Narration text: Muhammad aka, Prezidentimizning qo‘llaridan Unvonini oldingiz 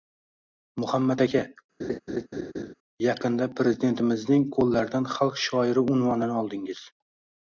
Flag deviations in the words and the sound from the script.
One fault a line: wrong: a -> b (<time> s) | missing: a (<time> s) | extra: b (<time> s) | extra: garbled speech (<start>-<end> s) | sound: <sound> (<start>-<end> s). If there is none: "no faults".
sound: laugh (1.8-2.7 s)
extra: yaqinda (3.1 s)
extra: Xalq shoiri (5.2 s)